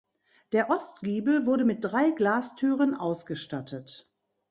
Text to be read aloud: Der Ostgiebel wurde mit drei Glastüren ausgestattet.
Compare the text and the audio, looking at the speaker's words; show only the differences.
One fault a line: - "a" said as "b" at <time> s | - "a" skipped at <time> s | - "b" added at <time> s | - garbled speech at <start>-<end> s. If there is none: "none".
none